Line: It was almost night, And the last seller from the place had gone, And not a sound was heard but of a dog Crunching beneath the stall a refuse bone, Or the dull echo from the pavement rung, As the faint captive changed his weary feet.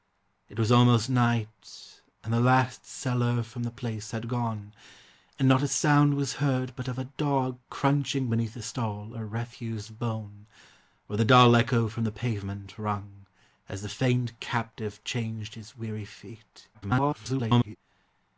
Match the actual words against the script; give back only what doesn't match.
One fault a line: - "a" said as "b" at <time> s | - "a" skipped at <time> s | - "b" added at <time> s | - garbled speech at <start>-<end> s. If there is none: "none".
- garbled speech at 16.7-17.8 s